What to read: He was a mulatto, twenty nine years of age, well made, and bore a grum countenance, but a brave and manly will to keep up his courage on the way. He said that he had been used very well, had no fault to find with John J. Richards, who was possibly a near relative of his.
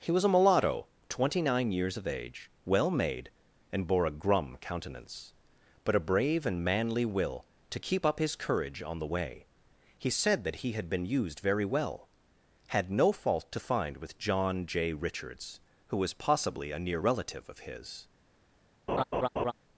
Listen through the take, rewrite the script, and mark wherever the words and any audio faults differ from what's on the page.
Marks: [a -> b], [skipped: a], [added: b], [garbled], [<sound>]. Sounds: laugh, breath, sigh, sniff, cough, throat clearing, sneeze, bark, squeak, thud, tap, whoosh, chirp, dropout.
He was a mulatto, twenty nine years of age, well made, and bore a grum countenance, but a brave and manly will to keep up his courage on the way. He said that he had been used very well, had no fault to find with John J. Richards, who was possibly a near relative of his. [laugh]